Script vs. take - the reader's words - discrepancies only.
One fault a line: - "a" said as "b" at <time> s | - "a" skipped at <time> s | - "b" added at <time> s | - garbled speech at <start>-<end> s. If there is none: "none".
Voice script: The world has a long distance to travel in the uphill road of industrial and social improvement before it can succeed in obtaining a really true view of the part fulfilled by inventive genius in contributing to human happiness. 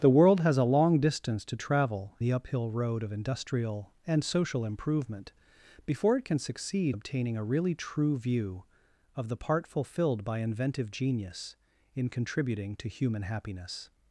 - "in" skipped at 2.2 s
- "in" skipped at 7.0 s